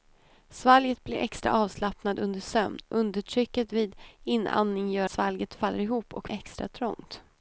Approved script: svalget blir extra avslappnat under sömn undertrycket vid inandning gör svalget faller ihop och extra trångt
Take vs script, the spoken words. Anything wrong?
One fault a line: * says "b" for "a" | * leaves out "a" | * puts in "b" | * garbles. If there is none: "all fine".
all fine